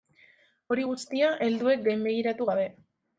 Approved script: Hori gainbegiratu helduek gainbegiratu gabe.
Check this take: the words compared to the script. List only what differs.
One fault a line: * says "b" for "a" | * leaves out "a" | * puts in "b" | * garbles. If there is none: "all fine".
* says "guztia" for "gainbegiratu"